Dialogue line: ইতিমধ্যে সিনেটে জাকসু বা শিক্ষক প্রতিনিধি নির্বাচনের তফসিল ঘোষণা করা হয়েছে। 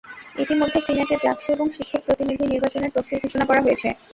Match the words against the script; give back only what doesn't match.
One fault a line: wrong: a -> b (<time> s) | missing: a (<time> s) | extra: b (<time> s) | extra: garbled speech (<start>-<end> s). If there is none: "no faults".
wrong: বা -> এবং (1.5 s)